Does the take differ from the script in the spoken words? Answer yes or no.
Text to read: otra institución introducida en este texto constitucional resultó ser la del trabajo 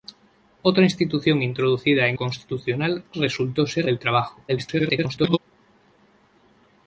yes